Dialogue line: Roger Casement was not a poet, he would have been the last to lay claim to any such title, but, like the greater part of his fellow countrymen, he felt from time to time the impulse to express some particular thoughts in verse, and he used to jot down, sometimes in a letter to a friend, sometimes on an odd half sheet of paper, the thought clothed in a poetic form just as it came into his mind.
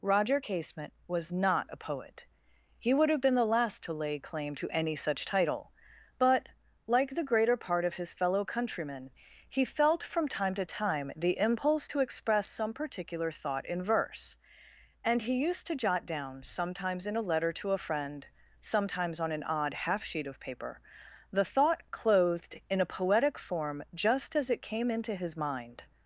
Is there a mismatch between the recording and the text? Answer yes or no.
yes